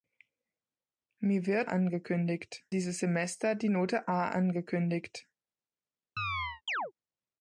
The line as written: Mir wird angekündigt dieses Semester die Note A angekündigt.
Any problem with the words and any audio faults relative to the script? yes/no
yes